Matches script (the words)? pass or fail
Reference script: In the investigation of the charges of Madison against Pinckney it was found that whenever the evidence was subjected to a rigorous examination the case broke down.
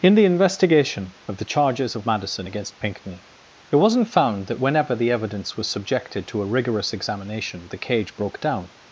fail